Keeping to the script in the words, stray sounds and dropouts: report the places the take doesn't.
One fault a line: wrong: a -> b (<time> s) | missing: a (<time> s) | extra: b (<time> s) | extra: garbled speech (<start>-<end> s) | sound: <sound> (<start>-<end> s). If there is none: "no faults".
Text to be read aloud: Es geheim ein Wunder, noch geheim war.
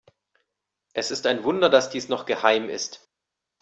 wrong: geheim -> ist (1.1 s)
extra: dass dies (1.7 s)
wrong: war -> ist (2.7 s)